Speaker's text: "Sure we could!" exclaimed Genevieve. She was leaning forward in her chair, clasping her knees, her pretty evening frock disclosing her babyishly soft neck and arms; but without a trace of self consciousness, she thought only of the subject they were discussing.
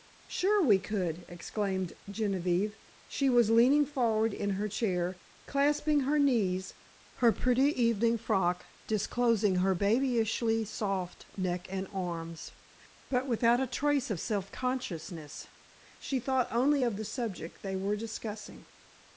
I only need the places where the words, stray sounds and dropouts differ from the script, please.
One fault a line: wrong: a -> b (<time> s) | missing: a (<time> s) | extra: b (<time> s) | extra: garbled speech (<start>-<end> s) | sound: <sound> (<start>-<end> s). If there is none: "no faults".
no faults